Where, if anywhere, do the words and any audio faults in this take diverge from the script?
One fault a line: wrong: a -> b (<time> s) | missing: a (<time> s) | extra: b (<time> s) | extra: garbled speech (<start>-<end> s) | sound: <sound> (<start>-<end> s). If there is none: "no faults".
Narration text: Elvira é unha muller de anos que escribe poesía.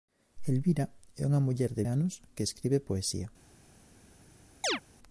sound: chirp (4.6-4.8 s)